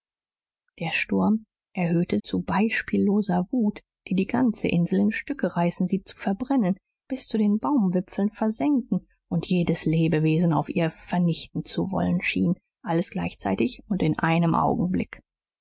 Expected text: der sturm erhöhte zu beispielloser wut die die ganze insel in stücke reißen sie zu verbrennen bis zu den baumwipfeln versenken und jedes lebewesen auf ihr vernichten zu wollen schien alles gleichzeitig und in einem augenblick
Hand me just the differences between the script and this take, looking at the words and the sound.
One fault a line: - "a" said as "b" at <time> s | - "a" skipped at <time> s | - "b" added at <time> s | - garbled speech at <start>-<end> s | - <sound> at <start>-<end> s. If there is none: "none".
none